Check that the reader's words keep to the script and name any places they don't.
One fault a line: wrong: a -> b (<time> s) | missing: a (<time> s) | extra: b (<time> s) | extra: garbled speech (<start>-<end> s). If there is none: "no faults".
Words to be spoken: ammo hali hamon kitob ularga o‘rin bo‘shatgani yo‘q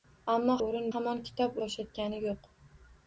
wrong: hali -> o‘rin (0.6 s)
missing: ularga o‘rin (1.6 s)